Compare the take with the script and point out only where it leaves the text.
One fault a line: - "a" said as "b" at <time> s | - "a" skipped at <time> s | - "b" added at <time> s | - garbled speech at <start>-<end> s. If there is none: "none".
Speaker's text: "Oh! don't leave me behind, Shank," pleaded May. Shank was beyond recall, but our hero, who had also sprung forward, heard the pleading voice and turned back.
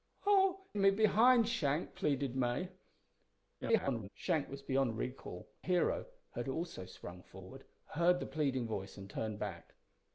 - "don't leave" skipped at 0.6 s
- garbled speech at 3.6-4.1 s
- "but our" skipped at 5.5 s